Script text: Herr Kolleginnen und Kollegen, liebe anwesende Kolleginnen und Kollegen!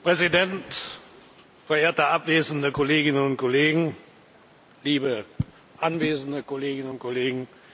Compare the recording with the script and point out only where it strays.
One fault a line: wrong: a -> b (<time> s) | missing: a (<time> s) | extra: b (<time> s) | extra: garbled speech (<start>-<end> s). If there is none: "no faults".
extra: Präsident Verehrte abwesende (0.1 s)